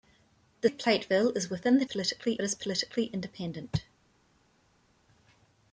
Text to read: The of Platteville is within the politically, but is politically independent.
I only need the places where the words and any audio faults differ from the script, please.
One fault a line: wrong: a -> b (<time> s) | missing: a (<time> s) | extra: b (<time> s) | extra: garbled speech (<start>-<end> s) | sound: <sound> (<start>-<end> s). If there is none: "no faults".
no faults